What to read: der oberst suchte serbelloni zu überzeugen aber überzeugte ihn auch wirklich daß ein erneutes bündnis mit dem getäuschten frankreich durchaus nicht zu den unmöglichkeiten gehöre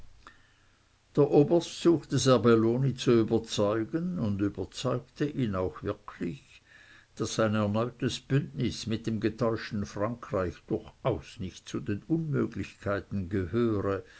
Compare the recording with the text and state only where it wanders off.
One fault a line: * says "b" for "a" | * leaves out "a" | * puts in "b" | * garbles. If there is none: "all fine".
* says "und" for "aber"